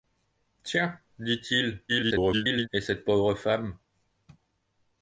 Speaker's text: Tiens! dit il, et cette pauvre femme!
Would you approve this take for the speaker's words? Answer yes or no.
no